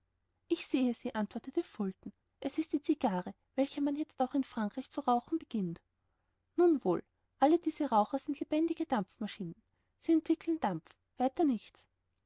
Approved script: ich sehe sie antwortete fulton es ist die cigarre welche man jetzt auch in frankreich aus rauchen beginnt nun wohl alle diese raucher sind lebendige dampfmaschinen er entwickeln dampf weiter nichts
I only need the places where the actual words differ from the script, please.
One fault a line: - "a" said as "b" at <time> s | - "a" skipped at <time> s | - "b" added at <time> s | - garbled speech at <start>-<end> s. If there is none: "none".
- "aus" said as "zu" at 4.9 s
- "er" said as "sie" at 10.0 s